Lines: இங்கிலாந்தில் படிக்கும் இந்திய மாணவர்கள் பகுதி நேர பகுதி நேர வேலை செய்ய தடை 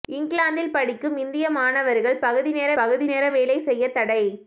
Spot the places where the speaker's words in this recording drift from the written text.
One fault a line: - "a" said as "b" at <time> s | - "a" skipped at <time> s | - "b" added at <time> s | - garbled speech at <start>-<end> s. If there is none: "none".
none